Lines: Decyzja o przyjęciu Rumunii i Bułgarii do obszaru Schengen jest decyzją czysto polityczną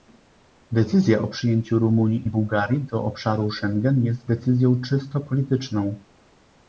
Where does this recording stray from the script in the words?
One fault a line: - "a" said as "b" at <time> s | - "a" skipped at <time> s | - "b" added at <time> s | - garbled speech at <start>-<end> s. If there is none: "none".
none